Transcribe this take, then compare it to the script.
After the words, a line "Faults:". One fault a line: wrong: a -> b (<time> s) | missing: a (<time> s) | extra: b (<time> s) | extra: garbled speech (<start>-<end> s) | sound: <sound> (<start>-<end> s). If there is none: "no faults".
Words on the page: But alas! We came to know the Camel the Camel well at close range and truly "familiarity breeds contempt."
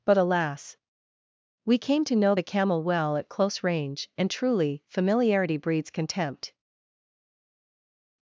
But alas! We came to know the Camel well at close range and truly "familiarity breeds contempt."
Faults:
missing: the Camel (2.8 s)